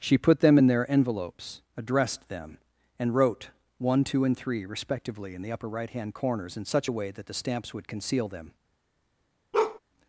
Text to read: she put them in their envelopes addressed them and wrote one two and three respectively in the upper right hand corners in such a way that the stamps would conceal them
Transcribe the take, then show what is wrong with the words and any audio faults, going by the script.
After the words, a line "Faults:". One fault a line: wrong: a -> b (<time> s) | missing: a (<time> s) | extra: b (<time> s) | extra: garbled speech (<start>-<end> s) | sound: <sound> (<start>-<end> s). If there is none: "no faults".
she put them in their envelopes addressed them and wrote one two and three respectively in the upper right hand corners in such a way that the stamps would conceal them
Faults:
sound: bark (9.5-9.8 s)